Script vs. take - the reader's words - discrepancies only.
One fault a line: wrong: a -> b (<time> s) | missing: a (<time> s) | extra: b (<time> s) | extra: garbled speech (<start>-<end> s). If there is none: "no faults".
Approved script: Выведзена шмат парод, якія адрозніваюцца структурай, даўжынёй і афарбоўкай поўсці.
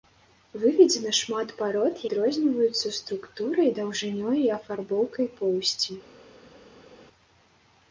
missing: якія (2.0 s)